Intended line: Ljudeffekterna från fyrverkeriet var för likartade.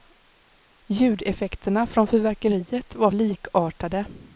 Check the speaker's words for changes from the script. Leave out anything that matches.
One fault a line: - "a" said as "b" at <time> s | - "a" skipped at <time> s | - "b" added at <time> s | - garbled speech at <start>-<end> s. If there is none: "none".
- "för" skipped at 3.1 s